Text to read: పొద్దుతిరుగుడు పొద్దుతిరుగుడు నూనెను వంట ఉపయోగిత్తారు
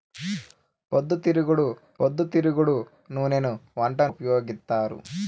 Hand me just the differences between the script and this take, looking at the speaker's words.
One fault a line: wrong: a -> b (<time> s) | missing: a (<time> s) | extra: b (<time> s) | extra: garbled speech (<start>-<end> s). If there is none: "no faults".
no faults